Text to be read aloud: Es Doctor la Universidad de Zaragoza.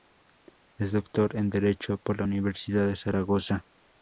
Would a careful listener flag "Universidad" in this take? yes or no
no